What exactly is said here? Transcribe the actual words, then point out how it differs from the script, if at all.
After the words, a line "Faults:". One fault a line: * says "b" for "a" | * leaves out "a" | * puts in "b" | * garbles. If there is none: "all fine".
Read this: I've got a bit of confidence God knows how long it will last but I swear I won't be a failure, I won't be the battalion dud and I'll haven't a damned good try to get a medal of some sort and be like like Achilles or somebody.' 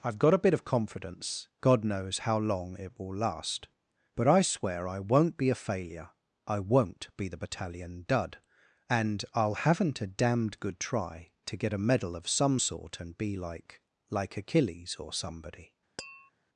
I've got a bit of confidence God knows how long it will last but I swear I won't be a failure, I won't be the battalion dud and I'll haven't a damned good try to get a medal of some sort and be like like Achilles or somebody.'
Faults:
all fine